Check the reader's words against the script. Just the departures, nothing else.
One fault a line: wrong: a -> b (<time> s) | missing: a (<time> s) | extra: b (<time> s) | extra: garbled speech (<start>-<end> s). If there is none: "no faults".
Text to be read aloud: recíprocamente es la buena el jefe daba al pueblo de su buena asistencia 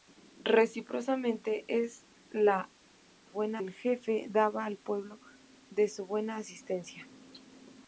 no faults